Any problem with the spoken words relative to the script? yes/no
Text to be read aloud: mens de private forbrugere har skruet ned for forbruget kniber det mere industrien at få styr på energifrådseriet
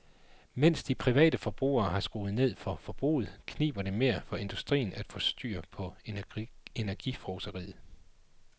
yes